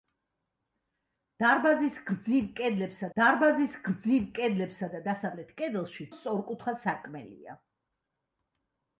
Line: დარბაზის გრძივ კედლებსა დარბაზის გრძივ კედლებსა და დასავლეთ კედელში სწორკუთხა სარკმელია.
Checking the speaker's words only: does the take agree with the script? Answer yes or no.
yes